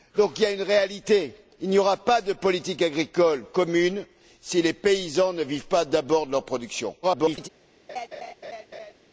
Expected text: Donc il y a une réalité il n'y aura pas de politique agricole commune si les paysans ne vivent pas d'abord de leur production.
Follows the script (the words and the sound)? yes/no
no